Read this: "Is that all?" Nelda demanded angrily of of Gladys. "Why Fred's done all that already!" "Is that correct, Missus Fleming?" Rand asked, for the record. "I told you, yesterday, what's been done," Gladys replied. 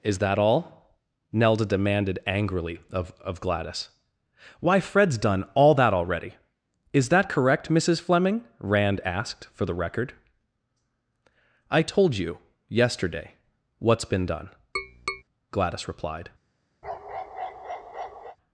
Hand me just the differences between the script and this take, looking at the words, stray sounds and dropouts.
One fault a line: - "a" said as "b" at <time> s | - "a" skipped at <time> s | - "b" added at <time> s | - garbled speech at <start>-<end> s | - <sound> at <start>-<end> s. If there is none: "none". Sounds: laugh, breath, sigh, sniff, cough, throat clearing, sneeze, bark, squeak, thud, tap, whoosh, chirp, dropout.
- tap at 14.8-15.2 s
- bark at 16.8-18.4 s